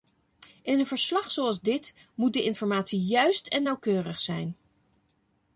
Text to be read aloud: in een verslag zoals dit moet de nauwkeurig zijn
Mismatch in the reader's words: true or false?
true